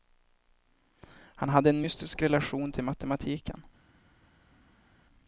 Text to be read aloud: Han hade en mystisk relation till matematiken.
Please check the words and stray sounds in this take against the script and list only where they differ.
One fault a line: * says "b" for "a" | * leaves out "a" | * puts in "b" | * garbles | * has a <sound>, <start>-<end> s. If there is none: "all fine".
all fine